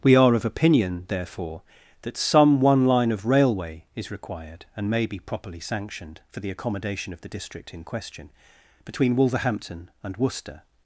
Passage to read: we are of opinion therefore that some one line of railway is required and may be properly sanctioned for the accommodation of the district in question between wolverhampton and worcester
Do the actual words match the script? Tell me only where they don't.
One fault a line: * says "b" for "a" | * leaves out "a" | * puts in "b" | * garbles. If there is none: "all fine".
all fine